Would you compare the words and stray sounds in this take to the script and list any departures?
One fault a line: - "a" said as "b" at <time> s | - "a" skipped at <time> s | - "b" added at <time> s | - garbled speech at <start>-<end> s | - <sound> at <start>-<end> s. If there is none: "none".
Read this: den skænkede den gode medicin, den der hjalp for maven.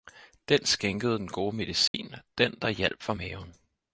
- dropout at 1.9-1.9 s